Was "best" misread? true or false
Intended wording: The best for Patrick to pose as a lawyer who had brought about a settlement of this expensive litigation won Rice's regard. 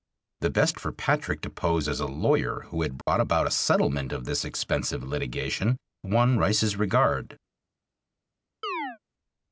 false